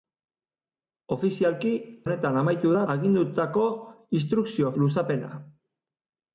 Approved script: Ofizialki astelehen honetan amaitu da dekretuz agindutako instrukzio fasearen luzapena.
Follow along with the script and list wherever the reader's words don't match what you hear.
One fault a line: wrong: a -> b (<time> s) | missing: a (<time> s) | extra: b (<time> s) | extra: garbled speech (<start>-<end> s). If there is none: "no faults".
missing: astelehen (1.7 s)
missing: dekretuz (2.8 s)
missing: fasearen (4.7 s)